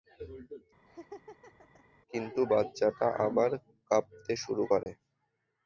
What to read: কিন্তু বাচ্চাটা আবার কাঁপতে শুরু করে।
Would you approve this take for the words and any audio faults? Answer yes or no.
no